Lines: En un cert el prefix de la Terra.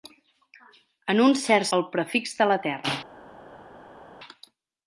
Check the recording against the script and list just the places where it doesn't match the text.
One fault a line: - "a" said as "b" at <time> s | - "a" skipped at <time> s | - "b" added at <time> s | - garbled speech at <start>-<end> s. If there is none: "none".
none